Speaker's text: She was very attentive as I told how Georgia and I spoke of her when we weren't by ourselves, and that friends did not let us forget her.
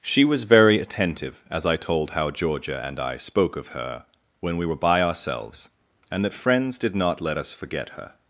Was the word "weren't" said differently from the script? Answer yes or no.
yes